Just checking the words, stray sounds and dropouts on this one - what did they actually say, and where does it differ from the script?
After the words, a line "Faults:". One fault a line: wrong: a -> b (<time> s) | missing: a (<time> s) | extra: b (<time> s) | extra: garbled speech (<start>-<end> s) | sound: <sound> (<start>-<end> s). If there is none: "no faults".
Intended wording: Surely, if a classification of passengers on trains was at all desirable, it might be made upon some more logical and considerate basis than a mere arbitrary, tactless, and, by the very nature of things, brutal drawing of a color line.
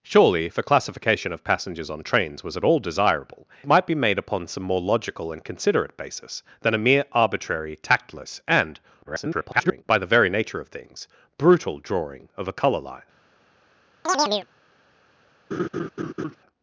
Surely, if a classification of passengers on trains was at all desirable, might be made upon some more logical and considerate basis than a mere arbitrary, tactless, and, [garbled] by the very nature of things, brutal drawing of a color line.
Faults:
missing: it (3.5 s)
extra: garbled speech (9.0-9.8 s)
sound: chirp (14.1-14.5 s)
sound: laugh (15.5-16.4 s)